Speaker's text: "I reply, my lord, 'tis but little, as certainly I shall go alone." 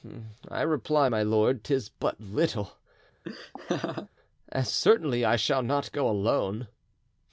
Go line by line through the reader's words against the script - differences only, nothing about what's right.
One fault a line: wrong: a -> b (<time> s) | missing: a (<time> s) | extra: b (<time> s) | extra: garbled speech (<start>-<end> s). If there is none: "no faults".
extra: not (5.6 s)